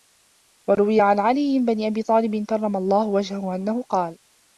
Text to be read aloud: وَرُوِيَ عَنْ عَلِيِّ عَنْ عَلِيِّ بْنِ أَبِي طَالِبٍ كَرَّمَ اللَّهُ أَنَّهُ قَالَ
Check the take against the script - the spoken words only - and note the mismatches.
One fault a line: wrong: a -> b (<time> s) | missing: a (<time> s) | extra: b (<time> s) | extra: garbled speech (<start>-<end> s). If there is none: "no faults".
missing: عَنْ عَلِيِّ (1.6 s)
extra: وَجْهَهُ (3.1 s)